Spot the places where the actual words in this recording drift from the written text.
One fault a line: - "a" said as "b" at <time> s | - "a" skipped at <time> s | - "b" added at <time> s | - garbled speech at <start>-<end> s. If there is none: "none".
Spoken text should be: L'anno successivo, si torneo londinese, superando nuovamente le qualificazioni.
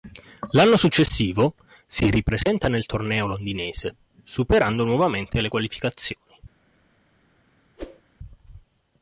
- "ripresenta nel" added at 2.1 s